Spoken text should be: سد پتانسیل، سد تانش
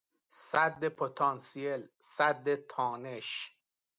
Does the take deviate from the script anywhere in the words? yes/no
no